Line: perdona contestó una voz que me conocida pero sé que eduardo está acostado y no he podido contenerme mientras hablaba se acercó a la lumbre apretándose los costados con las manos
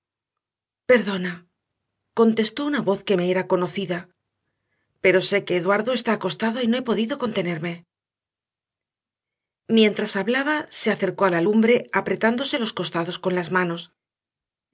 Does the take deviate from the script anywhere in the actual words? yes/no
yes